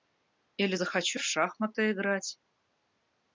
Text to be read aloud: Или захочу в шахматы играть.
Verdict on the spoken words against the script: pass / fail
pass